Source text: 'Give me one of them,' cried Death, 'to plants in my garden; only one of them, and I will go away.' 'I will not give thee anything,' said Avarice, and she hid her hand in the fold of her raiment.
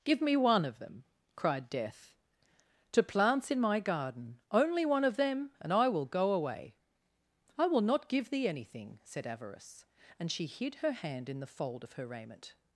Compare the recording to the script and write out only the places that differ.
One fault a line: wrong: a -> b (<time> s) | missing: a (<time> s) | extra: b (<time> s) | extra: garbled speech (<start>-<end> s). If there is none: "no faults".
no faults